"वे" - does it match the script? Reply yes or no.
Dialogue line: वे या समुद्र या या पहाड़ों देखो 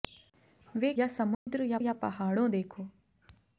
yes